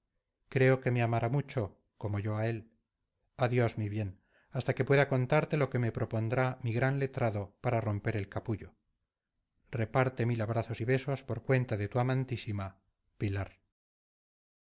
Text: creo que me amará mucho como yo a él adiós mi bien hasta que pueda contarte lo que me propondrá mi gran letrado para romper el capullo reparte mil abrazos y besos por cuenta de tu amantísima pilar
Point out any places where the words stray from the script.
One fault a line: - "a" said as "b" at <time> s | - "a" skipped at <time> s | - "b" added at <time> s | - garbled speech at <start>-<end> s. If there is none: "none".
none